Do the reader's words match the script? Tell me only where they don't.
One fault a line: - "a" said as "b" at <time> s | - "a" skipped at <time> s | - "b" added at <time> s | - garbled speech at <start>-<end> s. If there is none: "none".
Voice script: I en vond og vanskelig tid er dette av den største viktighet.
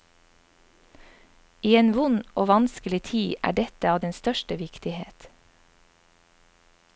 none